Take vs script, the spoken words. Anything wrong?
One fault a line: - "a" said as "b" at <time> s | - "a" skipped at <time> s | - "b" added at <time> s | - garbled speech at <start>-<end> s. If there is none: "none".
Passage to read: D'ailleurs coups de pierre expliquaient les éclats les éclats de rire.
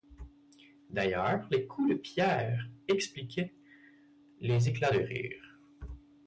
- "les" added at 1.5 s
- "les éclats" skipped at 4.9 s